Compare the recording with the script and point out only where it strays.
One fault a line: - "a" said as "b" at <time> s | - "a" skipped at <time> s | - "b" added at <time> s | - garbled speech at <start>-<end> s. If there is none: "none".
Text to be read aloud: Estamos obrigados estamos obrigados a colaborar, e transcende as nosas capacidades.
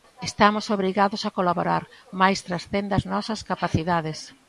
- "estamos obrigados" skipped at 1.2 s
- "e" said as "mais" at 2.2 s